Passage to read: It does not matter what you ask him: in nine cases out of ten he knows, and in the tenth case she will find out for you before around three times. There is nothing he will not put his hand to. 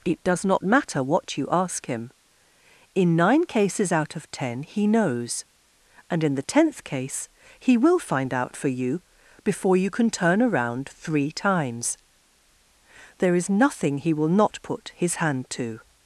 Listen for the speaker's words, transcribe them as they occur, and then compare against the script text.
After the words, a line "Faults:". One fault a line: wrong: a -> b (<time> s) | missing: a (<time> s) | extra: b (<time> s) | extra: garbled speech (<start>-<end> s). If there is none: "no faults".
It does not matter what you ask him: in nine cases out of ten he knows, and in the tenth case he will find out for you before you can turn around three times. There is nothing he will not put his hand to.
Faults:
wrong: she -> he (7.6 s)
extra: you can turn (9.8 s)